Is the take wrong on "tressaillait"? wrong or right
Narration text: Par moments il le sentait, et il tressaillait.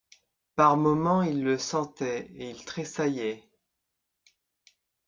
right